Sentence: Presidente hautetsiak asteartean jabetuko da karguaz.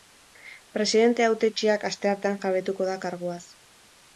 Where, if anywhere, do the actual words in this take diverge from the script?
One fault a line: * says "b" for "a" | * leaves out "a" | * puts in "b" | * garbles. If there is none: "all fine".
all fine